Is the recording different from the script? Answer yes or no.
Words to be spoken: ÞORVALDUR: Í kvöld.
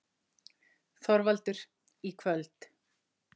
no